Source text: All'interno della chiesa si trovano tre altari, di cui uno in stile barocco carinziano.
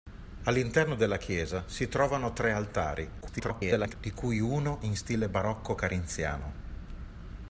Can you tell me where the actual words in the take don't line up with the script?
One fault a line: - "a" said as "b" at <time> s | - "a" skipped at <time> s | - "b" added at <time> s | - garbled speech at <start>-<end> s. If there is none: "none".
- garbled speech at 3.2-3.9 s